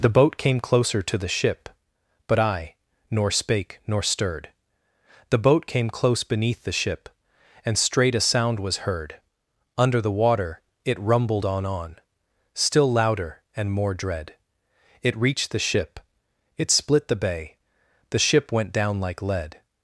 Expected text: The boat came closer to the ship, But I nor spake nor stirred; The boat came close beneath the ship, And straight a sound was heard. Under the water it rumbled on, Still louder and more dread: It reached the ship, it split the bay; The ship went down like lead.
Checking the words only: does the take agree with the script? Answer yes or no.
no